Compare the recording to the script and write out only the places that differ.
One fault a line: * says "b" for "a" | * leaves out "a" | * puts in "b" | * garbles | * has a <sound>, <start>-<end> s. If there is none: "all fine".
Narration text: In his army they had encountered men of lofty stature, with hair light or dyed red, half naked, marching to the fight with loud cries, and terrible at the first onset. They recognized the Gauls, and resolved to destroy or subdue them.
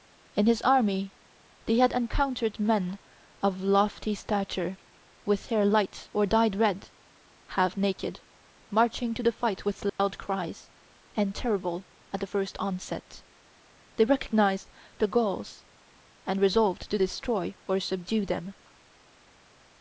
* has a dropout, 9.9-10.0 s